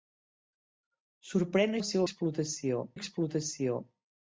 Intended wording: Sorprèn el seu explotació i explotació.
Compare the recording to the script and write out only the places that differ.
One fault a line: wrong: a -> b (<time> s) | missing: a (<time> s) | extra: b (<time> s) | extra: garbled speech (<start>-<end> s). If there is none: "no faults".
no faults